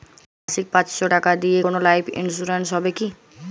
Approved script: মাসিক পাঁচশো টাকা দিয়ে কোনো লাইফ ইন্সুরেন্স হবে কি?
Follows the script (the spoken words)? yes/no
yes